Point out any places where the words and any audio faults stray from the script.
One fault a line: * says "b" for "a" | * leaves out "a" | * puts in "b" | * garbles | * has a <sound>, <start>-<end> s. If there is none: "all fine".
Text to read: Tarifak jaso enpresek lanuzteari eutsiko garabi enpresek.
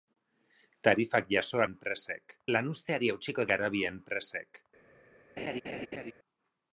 * has a laugh, 5.4-6.1 s